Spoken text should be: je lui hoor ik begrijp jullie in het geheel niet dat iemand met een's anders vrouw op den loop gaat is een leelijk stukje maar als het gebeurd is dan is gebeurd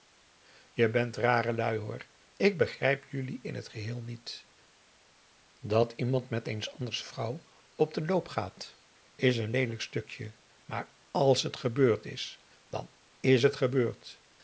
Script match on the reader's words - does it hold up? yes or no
no